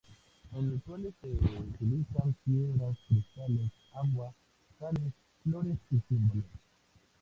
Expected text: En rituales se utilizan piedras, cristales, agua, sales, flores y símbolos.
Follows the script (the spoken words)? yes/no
yes